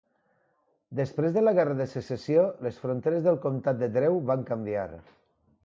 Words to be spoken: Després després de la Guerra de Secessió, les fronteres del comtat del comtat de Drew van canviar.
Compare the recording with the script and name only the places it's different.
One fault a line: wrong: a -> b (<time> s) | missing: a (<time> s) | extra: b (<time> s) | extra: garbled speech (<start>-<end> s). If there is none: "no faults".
missing: després (1.4 s)
missing: del comtat (3.8 s)